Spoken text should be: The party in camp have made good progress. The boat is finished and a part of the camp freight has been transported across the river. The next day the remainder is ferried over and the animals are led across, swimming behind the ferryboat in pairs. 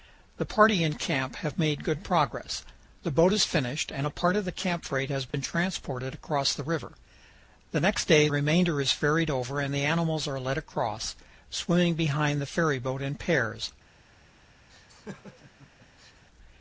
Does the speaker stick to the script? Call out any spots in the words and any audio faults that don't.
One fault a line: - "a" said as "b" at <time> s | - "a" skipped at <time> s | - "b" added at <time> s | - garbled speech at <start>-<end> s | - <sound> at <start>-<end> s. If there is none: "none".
- dropout at 5.3-5.3 s
- "the" skipped at 8.3 s
- laugh at 14.7-16.2 s